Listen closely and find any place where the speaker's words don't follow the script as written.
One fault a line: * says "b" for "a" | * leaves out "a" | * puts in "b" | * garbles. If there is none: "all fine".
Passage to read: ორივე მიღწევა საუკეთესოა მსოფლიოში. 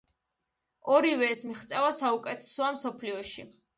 * puts in "ეს"